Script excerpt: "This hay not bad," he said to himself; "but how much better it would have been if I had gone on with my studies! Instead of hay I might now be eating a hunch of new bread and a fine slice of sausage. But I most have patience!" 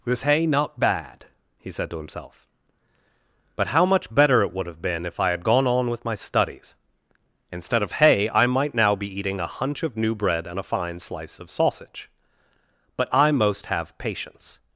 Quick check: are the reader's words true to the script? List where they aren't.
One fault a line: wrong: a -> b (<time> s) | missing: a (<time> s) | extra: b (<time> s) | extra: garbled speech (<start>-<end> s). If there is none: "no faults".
no faults